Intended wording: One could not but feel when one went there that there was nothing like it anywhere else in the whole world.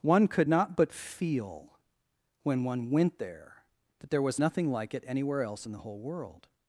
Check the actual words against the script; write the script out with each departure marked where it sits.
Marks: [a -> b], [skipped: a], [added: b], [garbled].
One could not but feel when one went there that there was nothing like it anywhere else in the whole world.